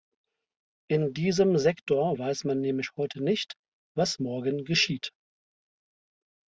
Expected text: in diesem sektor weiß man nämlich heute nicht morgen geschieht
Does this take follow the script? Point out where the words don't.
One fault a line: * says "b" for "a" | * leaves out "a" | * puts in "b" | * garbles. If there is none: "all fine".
* puts in "was"